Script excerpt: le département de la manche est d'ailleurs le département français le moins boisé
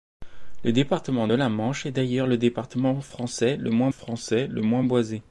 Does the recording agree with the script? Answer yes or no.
no